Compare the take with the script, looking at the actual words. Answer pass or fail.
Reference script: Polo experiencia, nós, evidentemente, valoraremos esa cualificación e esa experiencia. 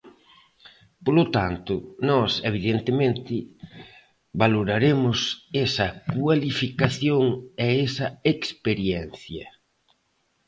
fail